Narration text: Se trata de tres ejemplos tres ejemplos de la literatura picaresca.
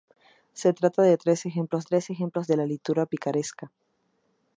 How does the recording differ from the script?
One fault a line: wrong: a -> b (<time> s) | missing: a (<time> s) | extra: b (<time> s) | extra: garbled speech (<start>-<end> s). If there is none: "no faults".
no faults